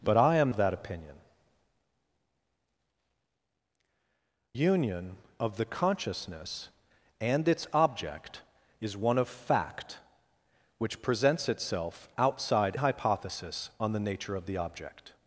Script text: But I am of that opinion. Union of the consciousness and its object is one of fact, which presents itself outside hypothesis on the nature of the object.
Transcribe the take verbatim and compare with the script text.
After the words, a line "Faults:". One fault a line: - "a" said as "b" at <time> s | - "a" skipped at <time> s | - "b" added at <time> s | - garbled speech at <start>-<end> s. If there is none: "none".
But I am of that opinion. Union of the consciousness and its object is one of fact, which presents itself outside hypothesis on the nature of the object.
Faults:
none